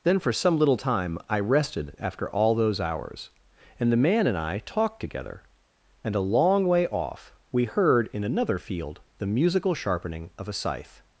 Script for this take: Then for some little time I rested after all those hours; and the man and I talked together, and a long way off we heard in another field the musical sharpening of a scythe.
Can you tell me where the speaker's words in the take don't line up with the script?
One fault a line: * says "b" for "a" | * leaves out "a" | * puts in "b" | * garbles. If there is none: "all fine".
all fine